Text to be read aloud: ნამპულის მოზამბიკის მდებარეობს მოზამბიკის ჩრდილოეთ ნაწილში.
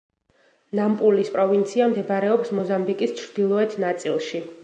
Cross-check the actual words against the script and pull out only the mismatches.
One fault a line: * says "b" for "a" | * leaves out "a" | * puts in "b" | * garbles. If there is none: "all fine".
* says "პროვინცია" for "მოზამბიკის"